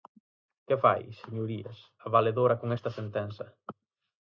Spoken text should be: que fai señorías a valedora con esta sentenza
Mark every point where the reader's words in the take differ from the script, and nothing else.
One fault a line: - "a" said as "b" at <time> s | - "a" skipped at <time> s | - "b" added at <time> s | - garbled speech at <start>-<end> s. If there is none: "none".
none